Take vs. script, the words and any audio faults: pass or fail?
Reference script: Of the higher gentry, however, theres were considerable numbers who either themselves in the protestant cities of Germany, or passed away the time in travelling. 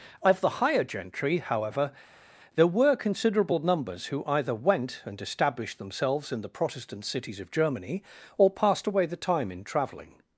fail